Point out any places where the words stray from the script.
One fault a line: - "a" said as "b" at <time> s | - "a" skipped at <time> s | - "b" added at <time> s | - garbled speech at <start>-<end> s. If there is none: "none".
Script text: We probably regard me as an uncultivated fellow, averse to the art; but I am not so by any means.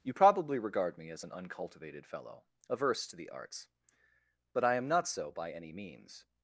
- "We" said as "You" at 0.0 s
- "art" said as "arts" at 3.3 s